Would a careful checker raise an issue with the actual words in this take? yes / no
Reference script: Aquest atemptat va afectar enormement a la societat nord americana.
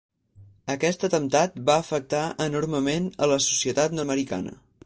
yes